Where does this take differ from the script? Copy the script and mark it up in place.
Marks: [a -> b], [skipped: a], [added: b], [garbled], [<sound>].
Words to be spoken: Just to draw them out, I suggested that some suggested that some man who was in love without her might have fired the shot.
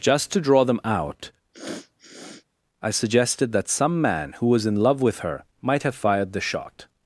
Just to draw them out, [sniff] I suggested that some [skipped: suggested that some] man who was in love [without -> with] her might have fired the shot.